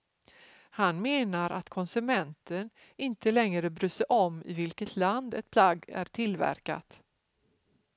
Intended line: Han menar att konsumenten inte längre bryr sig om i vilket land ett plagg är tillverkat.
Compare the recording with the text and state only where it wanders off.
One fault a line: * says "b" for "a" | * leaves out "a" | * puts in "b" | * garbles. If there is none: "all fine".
all fine